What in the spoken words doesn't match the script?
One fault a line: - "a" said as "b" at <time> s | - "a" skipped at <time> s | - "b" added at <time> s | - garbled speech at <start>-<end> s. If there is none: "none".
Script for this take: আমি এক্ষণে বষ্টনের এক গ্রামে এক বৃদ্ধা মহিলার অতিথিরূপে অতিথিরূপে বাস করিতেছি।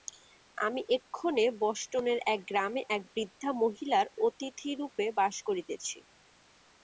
- "অতিথিরূপে" skipped at 5.0 s